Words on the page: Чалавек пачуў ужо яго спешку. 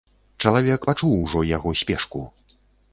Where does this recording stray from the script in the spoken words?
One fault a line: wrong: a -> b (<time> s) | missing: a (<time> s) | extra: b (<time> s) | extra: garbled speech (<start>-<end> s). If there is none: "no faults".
no faults